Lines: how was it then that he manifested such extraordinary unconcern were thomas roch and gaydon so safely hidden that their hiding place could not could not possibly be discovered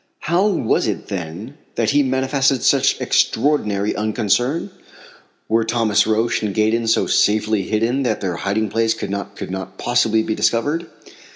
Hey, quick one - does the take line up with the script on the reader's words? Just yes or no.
yes